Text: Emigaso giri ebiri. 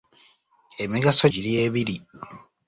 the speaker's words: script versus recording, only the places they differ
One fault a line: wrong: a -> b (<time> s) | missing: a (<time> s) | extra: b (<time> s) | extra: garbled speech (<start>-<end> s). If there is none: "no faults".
no faults